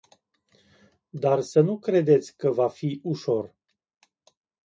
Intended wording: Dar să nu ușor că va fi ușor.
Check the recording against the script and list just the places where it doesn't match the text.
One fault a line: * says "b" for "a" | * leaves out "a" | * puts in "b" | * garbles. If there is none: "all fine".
* says "credeți" for "ușor"